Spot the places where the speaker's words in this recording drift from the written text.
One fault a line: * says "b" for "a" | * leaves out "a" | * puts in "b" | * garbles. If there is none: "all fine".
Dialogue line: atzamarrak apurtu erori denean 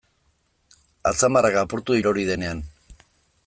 all fine